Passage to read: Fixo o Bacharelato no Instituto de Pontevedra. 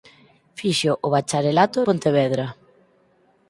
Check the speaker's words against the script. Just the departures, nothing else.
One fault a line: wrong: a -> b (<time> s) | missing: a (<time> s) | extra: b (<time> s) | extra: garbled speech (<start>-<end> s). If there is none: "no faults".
missing: no Instituto de (1.8 s)